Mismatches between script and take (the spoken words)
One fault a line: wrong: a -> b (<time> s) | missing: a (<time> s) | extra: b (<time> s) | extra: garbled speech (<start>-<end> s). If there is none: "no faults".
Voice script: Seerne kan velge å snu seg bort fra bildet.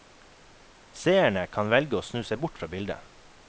no faults